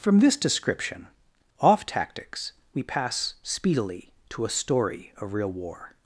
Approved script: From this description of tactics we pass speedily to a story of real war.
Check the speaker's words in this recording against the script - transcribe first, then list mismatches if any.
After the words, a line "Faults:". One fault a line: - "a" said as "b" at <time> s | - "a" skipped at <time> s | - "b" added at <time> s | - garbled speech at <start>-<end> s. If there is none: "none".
From this description off tactics we pass speedily to a story of real war.
Faults:
- "of" said as "off" at 1.6 s